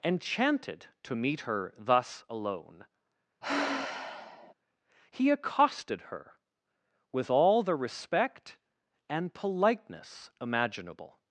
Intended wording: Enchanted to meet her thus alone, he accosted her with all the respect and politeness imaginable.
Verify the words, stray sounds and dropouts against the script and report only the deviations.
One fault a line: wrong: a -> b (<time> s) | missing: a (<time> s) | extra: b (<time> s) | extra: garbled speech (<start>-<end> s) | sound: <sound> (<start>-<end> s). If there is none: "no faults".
sound: sigh (3.4-4.5 s)